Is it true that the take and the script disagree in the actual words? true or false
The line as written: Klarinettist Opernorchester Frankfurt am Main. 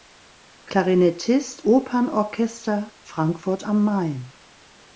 false